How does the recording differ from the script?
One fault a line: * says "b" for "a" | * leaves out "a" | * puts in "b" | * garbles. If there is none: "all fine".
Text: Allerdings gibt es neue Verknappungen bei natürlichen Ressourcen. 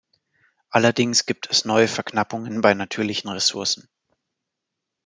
all fine